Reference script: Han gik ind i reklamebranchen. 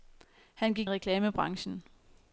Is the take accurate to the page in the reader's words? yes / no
no